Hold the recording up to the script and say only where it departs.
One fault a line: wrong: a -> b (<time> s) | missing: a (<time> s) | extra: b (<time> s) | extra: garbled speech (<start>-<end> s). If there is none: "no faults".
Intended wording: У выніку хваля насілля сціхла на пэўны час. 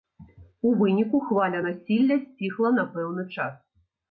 no faults